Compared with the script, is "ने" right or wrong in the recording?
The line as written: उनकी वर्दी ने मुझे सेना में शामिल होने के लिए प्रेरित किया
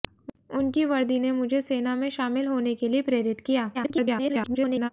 right